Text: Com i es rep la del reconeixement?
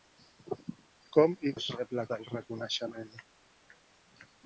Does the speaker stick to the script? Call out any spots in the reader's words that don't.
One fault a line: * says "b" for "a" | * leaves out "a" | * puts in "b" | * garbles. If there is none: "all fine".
all fine